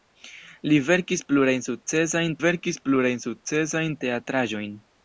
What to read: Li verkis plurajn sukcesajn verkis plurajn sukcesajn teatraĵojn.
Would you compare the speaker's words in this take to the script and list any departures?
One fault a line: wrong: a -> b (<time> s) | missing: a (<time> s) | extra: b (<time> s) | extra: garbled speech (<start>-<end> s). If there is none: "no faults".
no faults